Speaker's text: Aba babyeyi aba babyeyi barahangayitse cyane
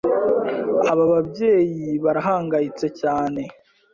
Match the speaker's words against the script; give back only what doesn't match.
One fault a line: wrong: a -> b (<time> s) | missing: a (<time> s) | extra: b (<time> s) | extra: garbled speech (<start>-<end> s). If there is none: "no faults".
missing: aba babyeyi (1.9 s)